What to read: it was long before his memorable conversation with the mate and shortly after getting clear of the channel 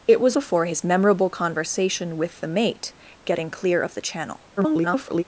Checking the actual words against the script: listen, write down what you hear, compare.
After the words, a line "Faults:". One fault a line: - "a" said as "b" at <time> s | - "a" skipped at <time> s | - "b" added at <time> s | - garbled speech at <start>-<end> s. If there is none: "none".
it was before his memorable conversation with the mate getting clear of the channel [garbled]
Faults:
- "long" skipped at 0.4 s
- "and shortly after" skipped at 2.9 s
- garbled speech at 4.6-5.2 s